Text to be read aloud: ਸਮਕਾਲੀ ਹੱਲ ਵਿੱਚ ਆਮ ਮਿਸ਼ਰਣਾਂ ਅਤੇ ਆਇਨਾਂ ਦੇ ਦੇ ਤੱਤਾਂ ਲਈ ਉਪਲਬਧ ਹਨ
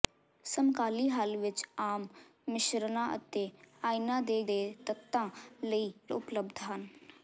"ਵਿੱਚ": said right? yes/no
yes